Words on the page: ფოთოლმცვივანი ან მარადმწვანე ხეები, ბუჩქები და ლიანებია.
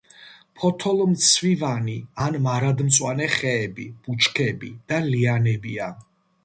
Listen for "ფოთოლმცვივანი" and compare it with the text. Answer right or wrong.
right